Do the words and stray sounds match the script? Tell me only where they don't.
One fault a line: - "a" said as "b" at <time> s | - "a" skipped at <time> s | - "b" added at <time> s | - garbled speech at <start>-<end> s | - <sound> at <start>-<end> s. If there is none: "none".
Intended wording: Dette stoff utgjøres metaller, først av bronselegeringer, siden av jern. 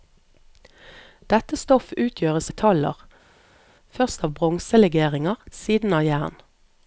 none